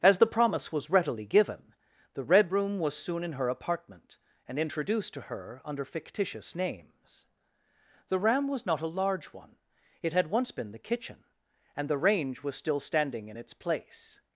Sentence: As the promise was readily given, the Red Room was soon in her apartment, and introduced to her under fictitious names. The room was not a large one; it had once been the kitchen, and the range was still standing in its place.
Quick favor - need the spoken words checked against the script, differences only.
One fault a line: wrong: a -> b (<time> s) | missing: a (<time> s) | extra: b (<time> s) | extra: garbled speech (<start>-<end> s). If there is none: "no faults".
wrong: room -> ram (8.2 s)